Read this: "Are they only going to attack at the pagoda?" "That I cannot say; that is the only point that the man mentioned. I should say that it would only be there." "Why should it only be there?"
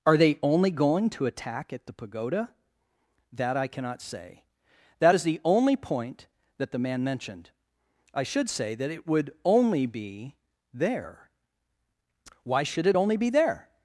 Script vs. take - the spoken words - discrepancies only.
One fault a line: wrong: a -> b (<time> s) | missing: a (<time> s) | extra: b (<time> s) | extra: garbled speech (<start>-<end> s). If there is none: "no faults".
no faults